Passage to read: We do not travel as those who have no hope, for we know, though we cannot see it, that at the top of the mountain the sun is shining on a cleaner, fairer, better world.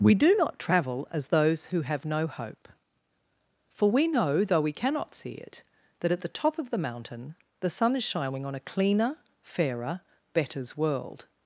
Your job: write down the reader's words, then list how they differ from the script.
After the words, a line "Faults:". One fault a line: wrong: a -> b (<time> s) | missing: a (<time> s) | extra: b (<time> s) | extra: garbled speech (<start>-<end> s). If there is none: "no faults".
We do not travel as those who have no hope, for we know, though we cannot see it, that at the top of the mountain the sun is shining on a cleaner, fairer, betters world.
Faults:
wrong: better -> betters (10.3 s)